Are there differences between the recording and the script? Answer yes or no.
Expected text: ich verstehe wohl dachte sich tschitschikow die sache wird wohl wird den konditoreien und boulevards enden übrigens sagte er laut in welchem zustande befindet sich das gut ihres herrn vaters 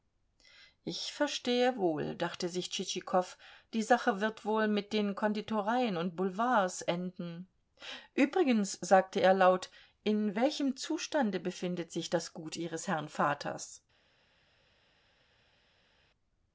yes